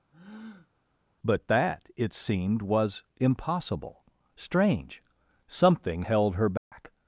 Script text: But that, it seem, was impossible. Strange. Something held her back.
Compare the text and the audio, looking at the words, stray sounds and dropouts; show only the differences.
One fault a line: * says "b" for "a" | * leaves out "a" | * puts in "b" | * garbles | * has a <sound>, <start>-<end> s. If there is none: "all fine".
* has a breath, 0.1-0.7 s
* says "seemed" for "seem"
* has a dropout, 6.6-6.7 s